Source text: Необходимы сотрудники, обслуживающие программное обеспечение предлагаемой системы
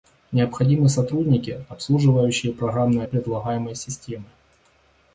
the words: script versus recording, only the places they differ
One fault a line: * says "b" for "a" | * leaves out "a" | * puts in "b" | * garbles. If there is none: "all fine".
* leaves out "обеспечение"